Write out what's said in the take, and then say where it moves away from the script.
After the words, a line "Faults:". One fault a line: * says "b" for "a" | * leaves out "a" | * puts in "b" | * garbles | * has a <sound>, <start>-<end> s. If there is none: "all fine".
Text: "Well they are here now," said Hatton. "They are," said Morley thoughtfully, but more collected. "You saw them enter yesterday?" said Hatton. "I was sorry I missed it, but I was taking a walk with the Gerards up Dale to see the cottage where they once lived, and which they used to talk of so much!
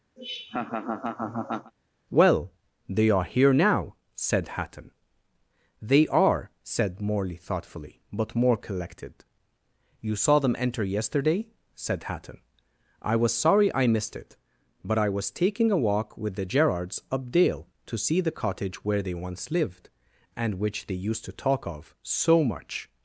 "Well they are here now," said Hatton. "They are," said Morley thoughtfully, but more collected. "You saw them enter yesterday?" said Hatton. "I was sorry I missed it, but I was taking a walk with the Gerards up Dale to see the cottage where they once lived, and which they used to talk of so much!
Faults:
* has a laugh, 0.2-1.7 s